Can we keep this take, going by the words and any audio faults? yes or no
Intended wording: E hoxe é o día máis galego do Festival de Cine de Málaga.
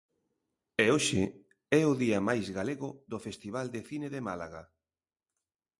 yes